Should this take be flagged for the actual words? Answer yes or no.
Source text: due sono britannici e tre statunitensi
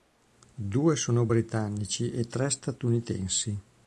no